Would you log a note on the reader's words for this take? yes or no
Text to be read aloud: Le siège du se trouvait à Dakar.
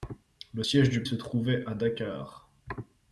no